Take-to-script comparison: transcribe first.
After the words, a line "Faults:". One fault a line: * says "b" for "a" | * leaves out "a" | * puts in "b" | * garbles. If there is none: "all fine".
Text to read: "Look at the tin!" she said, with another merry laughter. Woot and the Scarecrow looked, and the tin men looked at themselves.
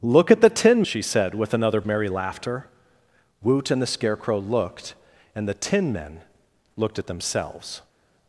"Look at the tin!" she said, with another merry laughter. Woot and the Scarecrow looked, and the tin men looked at themselves.
Faults:
all fine